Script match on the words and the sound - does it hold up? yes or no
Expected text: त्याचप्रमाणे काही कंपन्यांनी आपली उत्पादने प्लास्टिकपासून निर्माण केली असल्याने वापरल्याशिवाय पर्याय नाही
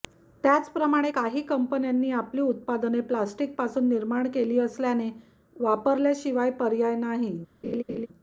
no